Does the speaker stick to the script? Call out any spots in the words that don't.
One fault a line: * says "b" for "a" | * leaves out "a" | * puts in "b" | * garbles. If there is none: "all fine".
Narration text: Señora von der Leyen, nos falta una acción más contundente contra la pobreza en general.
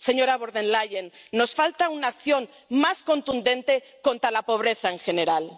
all fine